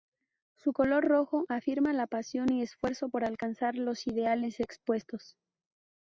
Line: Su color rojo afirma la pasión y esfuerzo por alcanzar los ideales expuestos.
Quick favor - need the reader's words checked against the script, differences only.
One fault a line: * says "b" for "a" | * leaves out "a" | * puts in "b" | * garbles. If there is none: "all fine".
all fine